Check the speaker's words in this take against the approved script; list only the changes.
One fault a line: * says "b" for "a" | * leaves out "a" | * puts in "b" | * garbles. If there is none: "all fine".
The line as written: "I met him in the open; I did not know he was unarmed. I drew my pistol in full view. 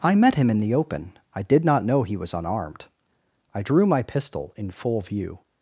all fine